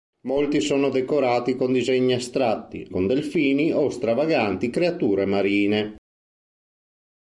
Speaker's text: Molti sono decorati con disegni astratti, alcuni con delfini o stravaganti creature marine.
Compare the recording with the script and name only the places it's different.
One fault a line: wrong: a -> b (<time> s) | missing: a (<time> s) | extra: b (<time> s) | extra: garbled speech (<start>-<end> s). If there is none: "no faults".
missing: alcuni (2.9 s)